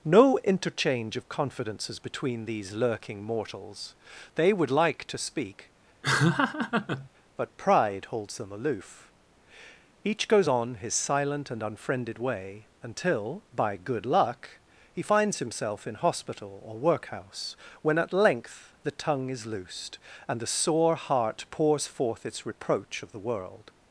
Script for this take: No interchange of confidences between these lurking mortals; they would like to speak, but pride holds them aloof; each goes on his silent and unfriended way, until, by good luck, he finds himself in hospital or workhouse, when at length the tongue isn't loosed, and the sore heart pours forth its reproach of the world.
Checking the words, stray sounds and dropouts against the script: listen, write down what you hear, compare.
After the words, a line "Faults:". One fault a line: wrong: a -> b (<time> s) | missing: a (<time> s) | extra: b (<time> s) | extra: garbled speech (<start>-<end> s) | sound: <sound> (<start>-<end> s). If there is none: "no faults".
No interchange of confidences between these lurking mortals; they would like to speak, but pride holds them aloof; each goes on his silent and unfriended way, until, by good luck, he finds himself in hospital or workhouse, when at length the tongue is loosed, and the sore heart pours forth its reproach of the world.
Faults:
sound: laugh (6.0-7.1 s)
wrong: isn't -> is (19.3 s)